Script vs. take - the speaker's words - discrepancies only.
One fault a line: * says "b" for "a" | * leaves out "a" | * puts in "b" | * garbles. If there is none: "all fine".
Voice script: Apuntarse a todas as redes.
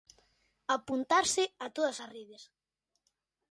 all fine